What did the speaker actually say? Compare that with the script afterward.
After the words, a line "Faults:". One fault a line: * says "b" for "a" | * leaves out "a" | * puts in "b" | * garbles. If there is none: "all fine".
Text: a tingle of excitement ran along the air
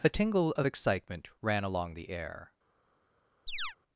a tingle of excitement ran along the air
Faults:
all fine